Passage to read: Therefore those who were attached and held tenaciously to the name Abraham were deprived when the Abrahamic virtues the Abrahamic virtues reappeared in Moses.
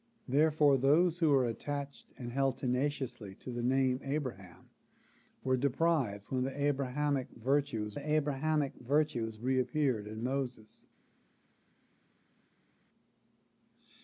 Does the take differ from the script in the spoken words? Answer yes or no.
no